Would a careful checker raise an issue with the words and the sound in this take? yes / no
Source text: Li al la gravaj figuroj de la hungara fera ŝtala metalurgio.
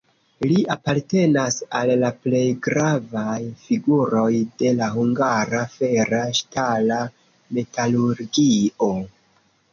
yes